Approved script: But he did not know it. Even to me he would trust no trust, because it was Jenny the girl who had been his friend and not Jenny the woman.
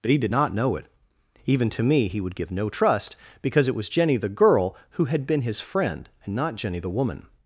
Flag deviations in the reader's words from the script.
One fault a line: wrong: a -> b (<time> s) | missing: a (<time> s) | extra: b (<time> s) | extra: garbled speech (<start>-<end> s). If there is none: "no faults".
wrong: trust -> give (2.3 s)